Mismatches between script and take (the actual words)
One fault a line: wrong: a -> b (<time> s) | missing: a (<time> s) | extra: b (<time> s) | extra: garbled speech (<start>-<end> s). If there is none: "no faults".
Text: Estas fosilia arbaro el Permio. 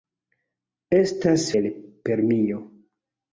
missing: fosilia arbaro (1.4 s)